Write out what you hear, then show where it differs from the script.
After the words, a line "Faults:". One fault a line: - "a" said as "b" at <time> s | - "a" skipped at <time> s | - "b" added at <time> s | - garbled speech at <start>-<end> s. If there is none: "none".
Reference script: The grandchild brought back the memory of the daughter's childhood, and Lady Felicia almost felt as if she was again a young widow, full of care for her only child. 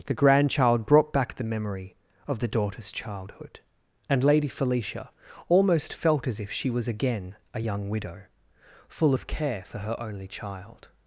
The grandchild brought back the memory of the daughter's childhood, and Lady Felicia almost felt as if she was again a young widow, full of care for her only child.
Faults:
none